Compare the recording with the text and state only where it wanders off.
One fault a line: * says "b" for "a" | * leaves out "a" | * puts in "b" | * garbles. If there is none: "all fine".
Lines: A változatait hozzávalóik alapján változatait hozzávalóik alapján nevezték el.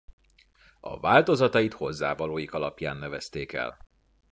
* leaves out "változatait hozzávalóik alapján"